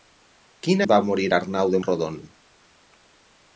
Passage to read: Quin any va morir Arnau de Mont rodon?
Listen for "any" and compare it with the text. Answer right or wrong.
wrong